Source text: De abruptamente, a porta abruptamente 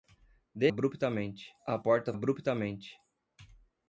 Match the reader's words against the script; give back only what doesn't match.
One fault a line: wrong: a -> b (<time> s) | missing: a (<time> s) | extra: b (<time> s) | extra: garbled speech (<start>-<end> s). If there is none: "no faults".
no faults